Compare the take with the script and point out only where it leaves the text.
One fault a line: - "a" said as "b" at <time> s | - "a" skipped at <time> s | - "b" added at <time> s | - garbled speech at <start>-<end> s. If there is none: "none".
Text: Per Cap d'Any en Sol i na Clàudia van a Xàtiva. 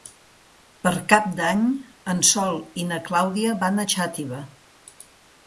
none